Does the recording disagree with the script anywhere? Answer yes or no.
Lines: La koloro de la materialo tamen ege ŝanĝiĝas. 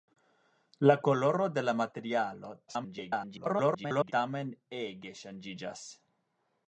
yes